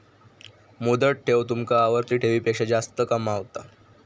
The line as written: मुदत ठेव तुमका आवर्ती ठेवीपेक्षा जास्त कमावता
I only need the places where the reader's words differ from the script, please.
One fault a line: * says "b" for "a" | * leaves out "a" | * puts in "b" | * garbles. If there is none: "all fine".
all fine